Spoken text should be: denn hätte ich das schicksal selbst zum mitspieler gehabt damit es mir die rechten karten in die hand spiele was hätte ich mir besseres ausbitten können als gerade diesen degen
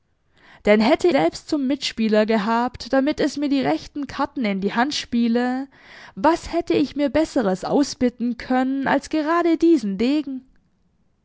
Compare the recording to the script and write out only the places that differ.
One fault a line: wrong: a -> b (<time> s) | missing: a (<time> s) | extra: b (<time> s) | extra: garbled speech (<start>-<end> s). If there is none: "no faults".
missing: ich das schicksal (1.1 s)